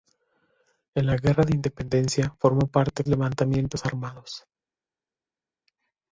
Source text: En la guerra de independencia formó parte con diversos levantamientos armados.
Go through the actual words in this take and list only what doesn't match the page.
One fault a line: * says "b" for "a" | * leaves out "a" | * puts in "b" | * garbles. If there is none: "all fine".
* leaves out "con diversos"